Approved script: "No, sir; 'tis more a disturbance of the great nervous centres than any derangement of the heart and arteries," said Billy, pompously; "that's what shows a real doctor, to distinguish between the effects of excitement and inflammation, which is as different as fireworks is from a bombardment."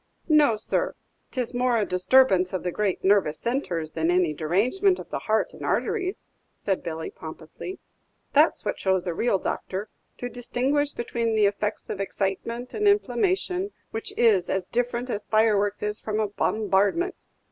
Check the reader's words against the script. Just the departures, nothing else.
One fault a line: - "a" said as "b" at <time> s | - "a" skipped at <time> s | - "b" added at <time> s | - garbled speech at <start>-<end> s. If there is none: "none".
none